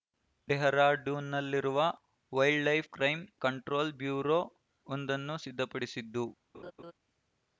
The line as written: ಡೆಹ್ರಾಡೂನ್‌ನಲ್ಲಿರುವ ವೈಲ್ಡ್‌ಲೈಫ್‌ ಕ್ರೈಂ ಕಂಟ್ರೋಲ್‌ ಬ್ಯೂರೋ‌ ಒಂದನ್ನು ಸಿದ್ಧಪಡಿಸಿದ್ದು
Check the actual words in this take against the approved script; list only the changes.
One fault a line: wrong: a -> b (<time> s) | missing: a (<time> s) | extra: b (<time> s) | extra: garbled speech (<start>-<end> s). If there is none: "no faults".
no faults